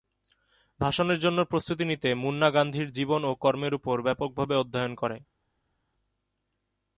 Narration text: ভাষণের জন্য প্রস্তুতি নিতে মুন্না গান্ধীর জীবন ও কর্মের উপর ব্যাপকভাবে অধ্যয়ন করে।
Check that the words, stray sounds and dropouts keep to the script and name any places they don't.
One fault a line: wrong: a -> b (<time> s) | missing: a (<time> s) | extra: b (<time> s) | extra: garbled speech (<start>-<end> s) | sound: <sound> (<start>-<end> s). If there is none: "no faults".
no faults